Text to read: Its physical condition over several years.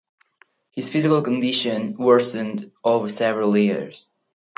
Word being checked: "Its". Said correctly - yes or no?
no